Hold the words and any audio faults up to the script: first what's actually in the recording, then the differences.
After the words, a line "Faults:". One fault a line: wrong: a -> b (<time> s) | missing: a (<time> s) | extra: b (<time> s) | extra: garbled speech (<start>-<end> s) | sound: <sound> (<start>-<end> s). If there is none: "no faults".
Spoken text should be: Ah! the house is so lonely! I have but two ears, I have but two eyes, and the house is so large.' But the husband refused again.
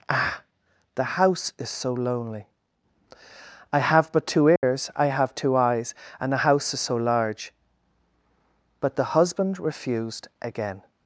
Ah! the house is so lonely! I have but two ears, I have two eyes, and the house is so large.' But the husband refused again.
Faults:
sound: dropout (4.6-4.6 s)
missing: but (5.3 s)